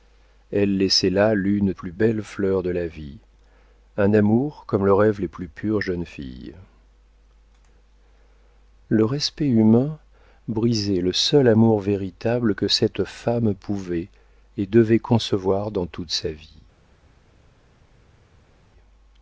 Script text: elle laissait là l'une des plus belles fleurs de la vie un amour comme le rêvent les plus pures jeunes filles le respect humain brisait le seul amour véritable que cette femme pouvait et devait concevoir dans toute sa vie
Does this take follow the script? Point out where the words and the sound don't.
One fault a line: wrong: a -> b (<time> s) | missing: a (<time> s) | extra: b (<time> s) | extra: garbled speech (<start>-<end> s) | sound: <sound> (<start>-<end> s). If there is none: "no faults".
missing: des (1.7 s)